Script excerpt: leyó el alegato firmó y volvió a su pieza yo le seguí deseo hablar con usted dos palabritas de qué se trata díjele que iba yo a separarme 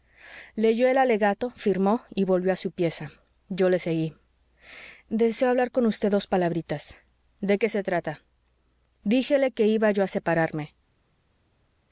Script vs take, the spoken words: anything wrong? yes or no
no